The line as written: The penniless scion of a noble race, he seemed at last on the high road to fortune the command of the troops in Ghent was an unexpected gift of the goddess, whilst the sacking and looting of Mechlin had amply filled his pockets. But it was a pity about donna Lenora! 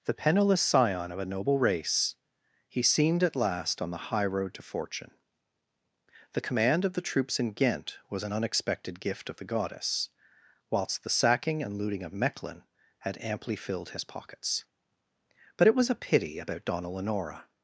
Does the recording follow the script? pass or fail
pass